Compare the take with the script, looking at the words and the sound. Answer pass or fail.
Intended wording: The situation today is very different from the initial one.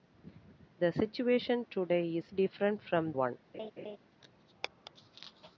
fail